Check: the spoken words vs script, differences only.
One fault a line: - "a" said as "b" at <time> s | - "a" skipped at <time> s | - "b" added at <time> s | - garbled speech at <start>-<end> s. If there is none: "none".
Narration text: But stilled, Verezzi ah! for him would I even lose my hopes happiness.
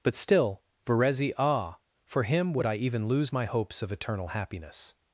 - "stilled" said as "still" at 0.1 s
- "of eternal" added at 3.8 s